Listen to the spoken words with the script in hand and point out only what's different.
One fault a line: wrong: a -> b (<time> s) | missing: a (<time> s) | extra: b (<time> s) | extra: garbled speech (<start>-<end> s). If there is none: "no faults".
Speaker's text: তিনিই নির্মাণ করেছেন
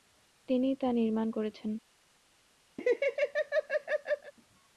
extra: তা (0.8 s)